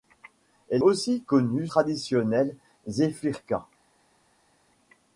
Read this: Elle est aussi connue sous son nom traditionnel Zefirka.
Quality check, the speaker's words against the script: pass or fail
fail